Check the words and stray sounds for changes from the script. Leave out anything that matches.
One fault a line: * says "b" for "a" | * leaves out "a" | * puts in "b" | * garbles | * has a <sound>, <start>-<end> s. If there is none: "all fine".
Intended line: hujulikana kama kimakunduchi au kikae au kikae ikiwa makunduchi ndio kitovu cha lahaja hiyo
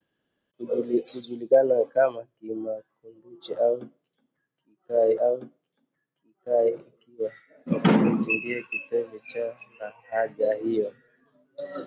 all fine